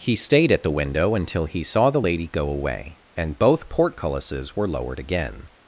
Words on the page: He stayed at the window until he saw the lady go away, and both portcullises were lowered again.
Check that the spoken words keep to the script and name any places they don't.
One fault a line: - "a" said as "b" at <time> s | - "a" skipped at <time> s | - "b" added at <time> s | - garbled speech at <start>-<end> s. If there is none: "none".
none